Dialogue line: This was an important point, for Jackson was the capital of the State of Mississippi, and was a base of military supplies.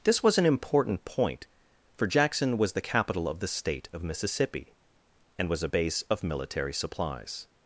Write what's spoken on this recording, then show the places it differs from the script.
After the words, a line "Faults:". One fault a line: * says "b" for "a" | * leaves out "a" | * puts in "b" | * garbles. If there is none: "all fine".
This was an important point, for Jackson was the capital of the State of Mississippi, and was a base of military supplies.
Faults:
all fine